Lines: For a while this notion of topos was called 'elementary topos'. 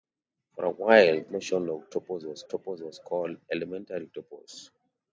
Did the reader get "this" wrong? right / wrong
wrong